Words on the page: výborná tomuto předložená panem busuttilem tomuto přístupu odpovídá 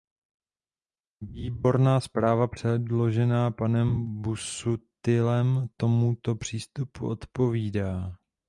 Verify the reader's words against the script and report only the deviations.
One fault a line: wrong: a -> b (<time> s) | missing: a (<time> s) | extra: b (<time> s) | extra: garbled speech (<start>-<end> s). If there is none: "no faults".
wrong: tomuto -> zpráva (2.0 s)